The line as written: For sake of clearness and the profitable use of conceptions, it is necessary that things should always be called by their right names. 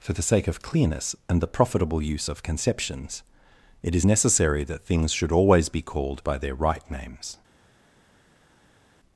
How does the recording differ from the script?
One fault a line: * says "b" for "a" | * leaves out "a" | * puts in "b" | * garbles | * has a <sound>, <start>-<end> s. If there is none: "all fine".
* puts in "the"